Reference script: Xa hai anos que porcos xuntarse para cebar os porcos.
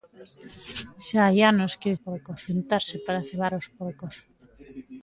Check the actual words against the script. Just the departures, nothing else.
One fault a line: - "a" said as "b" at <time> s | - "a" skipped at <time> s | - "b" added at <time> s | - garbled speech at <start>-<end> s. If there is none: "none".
none